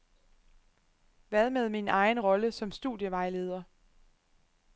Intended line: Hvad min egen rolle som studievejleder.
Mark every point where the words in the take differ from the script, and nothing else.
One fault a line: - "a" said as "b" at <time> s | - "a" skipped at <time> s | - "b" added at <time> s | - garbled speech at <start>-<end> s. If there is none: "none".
- "med" added at 1.5 s